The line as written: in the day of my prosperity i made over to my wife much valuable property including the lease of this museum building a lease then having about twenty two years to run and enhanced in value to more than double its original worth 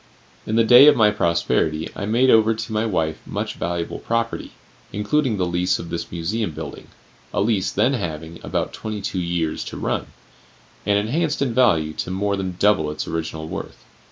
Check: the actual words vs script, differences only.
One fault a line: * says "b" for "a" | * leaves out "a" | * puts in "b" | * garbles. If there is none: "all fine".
all fine